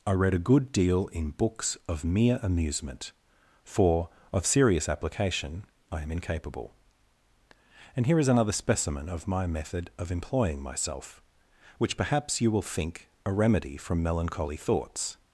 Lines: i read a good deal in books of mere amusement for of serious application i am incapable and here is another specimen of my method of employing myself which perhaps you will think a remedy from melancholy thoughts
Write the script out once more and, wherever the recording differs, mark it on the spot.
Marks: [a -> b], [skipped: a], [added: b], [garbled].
i read a good deal in books of mere amusement for of serious application i am incapable and here is another specimen of my method of employing myself which perhaps you will think a remedy from melancholy thoughts